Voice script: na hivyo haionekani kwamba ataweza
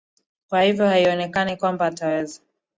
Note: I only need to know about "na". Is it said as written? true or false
false